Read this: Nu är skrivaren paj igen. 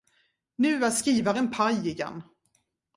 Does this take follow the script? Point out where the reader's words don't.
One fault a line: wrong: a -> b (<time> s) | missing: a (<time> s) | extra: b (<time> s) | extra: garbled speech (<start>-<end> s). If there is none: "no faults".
no faults